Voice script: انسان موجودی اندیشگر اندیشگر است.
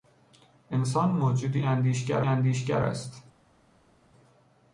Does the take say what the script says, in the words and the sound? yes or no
yes